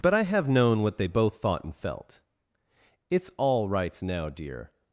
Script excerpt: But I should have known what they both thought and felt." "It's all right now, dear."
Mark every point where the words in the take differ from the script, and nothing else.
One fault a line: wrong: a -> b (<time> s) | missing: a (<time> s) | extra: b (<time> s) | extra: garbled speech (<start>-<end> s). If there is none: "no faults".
missing: should (0.2 s)
wrong: right -> rights (3.7 s)